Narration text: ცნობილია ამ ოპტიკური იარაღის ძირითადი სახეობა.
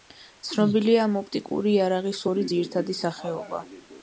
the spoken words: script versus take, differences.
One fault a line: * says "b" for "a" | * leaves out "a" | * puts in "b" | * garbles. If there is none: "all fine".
* puts in "ორი"